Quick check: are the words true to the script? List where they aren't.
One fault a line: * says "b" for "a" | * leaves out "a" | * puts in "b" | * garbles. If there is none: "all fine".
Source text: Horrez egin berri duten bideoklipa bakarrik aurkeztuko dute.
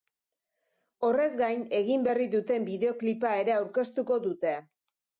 * puts in "gain"
* says "ere" for "bakarrik"